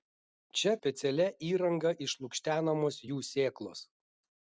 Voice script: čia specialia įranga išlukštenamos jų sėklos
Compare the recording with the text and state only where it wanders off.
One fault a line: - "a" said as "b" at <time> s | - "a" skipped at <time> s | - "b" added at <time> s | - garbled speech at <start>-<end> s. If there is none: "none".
none